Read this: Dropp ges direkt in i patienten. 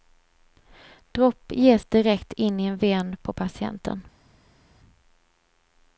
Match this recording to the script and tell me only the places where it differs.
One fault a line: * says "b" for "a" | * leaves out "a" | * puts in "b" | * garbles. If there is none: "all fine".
* puts in "en ven på"